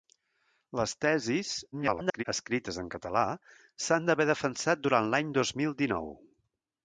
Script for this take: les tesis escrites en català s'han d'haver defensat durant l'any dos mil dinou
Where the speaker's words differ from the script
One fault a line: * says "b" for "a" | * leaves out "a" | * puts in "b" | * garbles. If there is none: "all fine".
* garbles